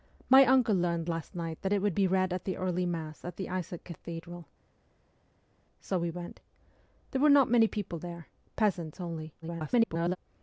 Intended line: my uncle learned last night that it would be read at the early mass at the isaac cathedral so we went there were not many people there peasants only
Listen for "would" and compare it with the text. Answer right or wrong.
right